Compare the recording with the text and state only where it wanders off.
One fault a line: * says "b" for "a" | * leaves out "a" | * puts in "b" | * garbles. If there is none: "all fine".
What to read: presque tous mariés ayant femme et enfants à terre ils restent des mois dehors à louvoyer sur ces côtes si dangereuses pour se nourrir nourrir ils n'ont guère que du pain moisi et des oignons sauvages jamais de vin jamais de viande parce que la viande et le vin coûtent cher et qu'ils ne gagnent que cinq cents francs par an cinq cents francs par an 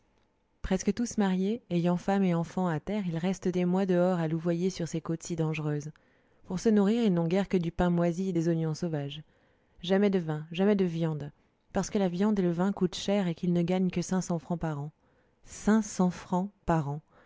* leaves out "nourrir"